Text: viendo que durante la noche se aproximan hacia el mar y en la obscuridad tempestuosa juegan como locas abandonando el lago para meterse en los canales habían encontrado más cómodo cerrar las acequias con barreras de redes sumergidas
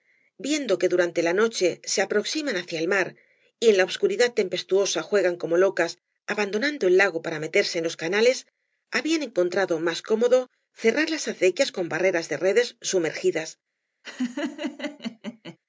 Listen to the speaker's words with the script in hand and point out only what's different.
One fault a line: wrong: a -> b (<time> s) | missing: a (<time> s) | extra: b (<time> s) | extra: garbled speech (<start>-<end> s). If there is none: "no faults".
no faults